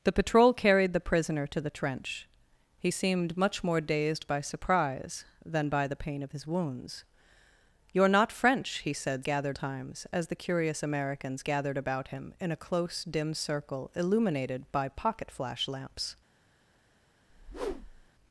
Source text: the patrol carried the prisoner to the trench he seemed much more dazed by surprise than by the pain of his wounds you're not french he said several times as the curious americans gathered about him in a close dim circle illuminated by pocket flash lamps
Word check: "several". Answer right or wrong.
wrong